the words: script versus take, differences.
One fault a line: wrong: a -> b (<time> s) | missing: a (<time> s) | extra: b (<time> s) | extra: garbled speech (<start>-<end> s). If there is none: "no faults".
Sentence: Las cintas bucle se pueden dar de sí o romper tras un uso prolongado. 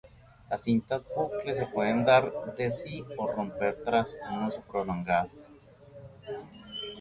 no faults